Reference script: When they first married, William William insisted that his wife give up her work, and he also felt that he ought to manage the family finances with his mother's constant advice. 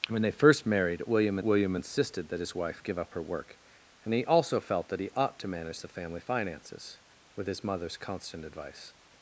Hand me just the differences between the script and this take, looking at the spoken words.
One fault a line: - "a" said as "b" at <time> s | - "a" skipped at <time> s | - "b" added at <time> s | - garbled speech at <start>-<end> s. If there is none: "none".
none